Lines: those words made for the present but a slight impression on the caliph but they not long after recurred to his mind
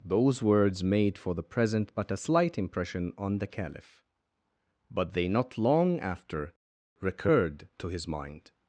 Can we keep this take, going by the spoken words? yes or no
yes